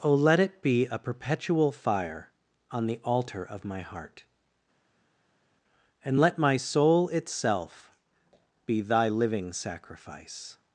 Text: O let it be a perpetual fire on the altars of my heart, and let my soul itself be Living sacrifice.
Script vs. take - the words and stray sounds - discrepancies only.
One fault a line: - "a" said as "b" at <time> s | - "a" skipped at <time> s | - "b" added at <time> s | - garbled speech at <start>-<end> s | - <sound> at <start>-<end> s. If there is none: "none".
- "altars" said as "altar" at 3.0 s
- "Thy" added at 8.8 s